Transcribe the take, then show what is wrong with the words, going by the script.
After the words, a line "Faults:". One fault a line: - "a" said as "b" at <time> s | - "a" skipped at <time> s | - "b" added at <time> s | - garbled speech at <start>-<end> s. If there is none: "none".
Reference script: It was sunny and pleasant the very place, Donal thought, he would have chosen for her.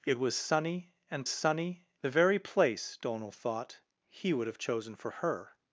It was sunny and sunny the very place, Donal thought, he would have chosen for her.
Faults:
- "pleasant" said as "sunny" at 1.3 s